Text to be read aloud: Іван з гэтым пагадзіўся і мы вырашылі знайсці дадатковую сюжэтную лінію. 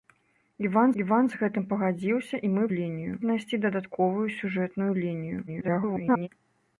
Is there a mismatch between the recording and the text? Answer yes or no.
yes